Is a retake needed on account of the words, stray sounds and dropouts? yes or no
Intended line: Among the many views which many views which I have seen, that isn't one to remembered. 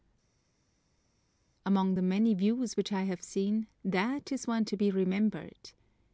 yes